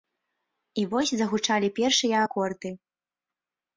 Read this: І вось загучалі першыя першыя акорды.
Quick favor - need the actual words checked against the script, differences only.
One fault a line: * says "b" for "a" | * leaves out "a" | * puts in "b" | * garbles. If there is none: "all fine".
* leaves out "першыя"